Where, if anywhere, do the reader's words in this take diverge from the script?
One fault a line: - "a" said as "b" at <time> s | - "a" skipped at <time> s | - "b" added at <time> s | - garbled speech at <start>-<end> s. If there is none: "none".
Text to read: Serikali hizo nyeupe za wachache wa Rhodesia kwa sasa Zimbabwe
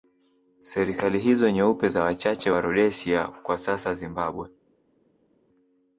none